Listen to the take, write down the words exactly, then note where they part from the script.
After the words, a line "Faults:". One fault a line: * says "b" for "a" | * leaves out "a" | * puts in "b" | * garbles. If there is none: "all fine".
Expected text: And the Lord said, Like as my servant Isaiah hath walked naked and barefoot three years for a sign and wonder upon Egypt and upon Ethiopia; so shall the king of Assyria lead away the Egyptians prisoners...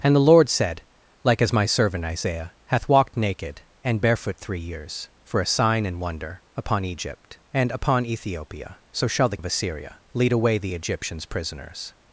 And the Lord said, Like as my servant Isaiah hath walked naked and barefoot three years for a sign and wonder upon Egypt and upon Ethiopia; so shall the of Assyria lead away the Egyptians prisoners...
Faults:
* leaves out "king"